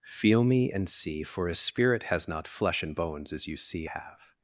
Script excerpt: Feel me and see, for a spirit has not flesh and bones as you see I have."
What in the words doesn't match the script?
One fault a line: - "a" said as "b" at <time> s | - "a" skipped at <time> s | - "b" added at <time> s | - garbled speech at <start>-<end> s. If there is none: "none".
- "I" skipped at 3.9 s